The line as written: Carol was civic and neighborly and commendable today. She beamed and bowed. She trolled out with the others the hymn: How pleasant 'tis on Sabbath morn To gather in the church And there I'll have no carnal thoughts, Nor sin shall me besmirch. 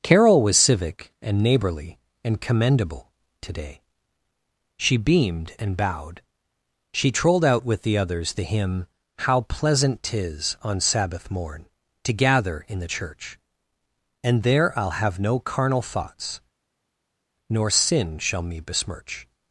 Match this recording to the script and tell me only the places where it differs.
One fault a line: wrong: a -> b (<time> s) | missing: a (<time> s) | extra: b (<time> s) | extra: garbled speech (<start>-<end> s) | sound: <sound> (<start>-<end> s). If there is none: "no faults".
no faults